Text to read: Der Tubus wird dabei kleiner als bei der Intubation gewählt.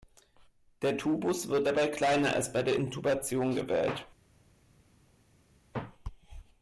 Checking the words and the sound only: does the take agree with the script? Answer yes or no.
yes